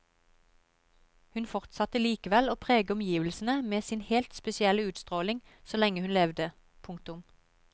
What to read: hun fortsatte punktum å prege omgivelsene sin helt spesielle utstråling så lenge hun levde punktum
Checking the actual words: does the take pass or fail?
fail